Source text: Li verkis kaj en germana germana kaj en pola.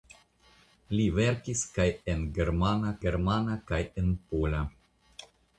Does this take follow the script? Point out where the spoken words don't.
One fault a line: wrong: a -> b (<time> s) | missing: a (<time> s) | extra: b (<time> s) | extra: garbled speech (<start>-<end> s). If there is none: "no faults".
no faults